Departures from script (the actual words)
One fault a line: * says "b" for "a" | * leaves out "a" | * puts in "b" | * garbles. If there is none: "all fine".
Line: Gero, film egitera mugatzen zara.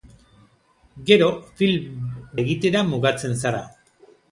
all fine